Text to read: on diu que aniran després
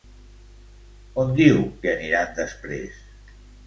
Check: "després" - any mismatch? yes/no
no